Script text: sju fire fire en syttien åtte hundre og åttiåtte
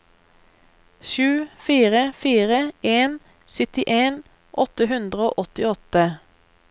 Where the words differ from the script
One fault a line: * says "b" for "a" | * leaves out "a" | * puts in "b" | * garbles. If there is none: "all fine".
all fine